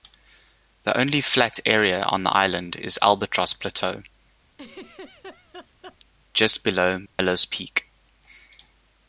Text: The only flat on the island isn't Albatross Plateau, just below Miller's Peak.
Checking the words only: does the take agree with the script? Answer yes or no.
no